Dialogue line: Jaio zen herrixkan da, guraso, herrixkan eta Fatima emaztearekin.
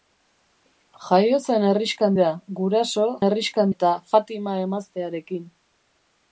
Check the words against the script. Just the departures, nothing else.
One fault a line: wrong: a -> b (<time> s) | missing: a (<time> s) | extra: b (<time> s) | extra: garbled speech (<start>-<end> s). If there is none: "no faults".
no faults